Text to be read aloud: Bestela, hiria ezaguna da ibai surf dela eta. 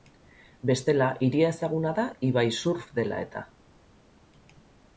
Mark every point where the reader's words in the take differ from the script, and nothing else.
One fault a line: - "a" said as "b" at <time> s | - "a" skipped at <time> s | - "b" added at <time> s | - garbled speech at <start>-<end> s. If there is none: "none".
none